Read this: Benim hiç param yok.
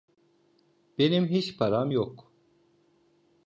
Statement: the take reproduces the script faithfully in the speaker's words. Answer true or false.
true